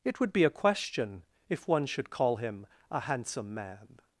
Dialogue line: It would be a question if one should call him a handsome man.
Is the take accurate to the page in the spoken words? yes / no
yes